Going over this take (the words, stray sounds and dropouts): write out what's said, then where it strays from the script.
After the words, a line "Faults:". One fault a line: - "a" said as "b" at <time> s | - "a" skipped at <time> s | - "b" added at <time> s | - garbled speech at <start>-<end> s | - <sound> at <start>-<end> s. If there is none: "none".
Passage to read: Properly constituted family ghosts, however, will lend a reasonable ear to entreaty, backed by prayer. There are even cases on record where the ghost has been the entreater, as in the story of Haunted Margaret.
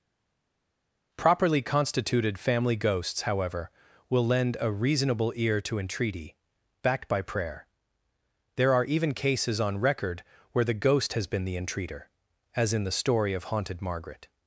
Properly constituted family ghosts, however, will lend a reasonable ear to entreaty, backed by prayer. There are even cases on record where the ghost has been the entreater, as in the story of Haunted Margaret.
Faults:
none